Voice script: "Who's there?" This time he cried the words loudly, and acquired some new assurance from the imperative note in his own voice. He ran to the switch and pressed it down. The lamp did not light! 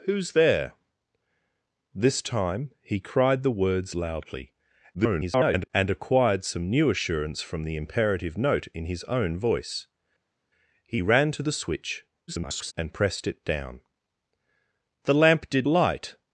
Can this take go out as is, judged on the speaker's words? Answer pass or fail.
fail